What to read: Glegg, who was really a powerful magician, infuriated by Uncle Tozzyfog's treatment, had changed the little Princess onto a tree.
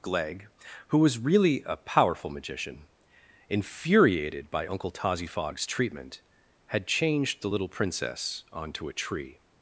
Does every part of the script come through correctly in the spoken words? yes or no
yes